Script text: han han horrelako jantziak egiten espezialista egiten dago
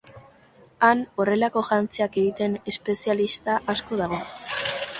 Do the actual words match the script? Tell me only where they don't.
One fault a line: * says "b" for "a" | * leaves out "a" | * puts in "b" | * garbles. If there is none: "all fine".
* leaves out "han"
* says "asko" for "egiten"